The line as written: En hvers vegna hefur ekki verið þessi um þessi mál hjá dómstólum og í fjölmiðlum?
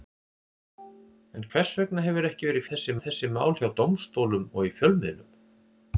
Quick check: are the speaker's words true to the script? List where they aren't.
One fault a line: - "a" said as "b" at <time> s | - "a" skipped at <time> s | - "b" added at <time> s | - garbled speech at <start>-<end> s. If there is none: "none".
none